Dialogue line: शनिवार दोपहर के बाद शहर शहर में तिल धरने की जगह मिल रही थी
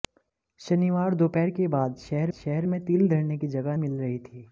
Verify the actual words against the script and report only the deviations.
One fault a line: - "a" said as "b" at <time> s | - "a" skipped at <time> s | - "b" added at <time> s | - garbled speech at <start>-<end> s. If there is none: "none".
none